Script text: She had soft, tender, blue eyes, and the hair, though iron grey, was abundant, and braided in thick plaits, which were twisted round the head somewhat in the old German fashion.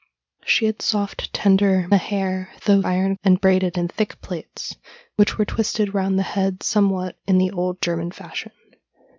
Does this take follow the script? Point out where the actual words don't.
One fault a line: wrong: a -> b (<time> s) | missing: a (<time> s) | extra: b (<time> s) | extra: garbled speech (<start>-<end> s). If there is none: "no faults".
missing: blue eyes and (1.9 s)
missing: grey was abundant (3.1 s)